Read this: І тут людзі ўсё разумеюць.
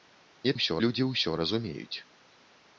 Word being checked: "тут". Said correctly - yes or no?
no